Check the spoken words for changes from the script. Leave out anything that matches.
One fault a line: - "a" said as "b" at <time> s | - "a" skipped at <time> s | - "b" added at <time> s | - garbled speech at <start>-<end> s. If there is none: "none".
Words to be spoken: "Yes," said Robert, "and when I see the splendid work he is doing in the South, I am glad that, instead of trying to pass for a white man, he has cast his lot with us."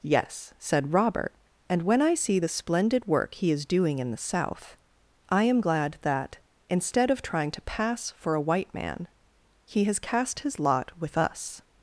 none